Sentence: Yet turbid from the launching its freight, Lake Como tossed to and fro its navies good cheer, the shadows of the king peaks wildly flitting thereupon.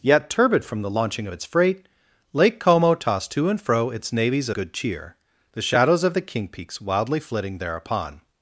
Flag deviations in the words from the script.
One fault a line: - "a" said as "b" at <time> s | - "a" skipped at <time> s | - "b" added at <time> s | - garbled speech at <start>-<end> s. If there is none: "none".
none